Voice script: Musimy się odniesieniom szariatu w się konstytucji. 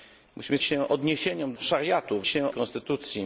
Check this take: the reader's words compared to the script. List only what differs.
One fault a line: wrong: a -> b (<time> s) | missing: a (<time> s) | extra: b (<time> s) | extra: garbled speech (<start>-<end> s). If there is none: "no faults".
no faults